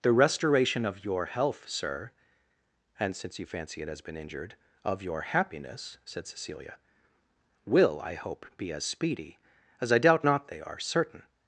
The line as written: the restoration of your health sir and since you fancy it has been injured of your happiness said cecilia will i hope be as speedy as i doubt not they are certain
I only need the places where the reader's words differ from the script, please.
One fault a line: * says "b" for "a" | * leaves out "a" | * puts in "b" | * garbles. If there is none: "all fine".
all fine